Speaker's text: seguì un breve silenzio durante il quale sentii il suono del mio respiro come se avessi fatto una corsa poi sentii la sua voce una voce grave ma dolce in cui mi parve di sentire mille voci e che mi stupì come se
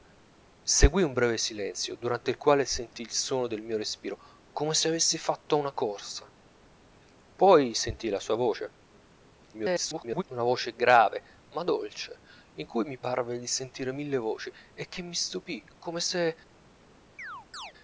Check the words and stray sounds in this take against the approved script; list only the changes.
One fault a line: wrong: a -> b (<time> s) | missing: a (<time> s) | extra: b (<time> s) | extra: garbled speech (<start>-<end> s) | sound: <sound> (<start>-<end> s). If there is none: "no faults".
extra: garbled speech (9.5-10.2 s)
sound: chirp (17.2-17.7 s)